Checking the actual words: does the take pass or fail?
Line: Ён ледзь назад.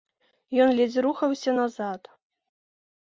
fail